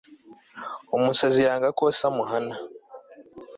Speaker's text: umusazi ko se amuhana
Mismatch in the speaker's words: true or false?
true